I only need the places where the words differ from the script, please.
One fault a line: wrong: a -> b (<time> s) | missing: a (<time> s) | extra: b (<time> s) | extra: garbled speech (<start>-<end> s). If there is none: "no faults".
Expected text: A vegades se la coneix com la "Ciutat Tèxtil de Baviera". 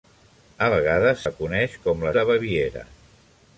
missing: se (1.2 s)
missing: Ciutat Tèxtil (2.1 s)